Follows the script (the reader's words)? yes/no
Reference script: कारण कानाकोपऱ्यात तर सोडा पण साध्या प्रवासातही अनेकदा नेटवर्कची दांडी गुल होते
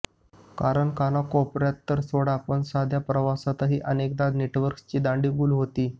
yes